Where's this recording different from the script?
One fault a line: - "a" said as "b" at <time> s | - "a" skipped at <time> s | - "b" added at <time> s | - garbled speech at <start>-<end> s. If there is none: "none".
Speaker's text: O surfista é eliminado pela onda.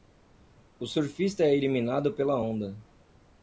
none